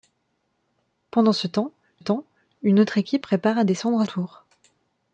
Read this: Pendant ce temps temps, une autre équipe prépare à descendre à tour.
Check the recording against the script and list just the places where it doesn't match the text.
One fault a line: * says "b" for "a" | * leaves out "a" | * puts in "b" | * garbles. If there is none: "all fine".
all fine